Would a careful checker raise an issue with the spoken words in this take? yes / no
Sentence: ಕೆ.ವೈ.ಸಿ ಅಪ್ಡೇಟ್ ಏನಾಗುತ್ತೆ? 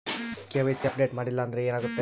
yes